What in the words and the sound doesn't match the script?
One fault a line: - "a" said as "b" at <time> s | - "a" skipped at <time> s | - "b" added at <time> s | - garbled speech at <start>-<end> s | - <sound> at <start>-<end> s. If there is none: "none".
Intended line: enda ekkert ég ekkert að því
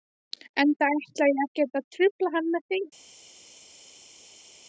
- "ekkert" said as "ætla" at 0.9 s
- "trufla hann með" added at 2.0 s